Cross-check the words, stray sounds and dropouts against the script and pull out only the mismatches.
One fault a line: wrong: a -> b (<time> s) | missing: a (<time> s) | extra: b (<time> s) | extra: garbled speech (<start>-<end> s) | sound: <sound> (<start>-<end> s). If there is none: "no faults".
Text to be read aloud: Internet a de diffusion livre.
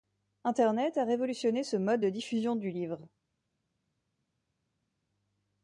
extra: révolutionné ce mode (1.1 s)
extra: du (2.6 s)